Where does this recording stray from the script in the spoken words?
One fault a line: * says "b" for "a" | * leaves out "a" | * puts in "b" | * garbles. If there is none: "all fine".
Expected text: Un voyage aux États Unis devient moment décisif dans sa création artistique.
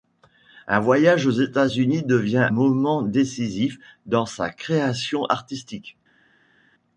all fine